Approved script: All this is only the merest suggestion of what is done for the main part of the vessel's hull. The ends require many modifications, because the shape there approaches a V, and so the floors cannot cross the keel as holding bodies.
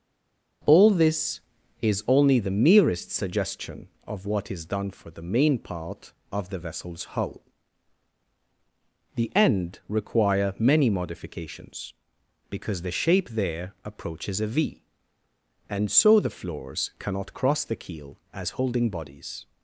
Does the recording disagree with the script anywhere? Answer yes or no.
yes